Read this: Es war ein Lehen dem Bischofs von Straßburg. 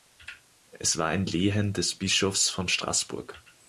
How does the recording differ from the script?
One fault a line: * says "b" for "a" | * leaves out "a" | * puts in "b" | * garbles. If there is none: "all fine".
* says "des" for "dem"